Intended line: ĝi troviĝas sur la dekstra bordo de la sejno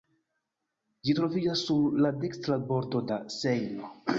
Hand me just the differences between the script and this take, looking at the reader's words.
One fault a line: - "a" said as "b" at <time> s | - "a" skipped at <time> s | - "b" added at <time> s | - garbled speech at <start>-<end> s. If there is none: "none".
- "de" skipped at 3.1 s